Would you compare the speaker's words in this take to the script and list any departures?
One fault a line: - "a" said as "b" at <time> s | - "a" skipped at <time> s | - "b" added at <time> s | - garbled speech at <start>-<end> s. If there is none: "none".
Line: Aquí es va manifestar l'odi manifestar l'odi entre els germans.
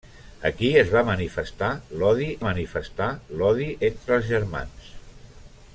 none